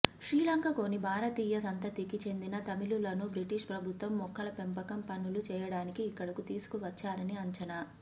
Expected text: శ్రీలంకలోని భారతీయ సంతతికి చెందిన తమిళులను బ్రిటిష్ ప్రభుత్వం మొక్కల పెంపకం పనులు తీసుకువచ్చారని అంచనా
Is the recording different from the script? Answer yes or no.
yes